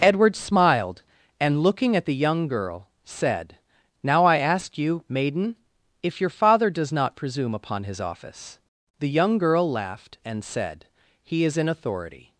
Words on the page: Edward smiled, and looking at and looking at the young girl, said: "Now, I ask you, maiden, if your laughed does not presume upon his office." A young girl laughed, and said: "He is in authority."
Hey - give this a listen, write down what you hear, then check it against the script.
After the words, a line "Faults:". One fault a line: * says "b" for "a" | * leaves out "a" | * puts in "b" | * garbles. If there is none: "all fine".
Edward smiled, and looking at the young girl, said: "Now, I ask you, maiden, if your father does not presume upon his office." The young girl laughed, and said: "He is in authority."
Faults:
* leaves out "and looking at"
* says "father" for "laughed"
* says "The" for "A"